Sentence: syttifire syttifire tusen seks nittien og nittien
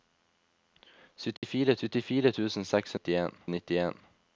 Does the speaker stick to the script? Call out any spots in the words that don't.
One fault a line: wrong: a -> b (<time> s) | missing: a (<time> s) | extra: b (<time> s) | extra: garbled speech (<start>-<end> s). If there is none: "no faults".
no faults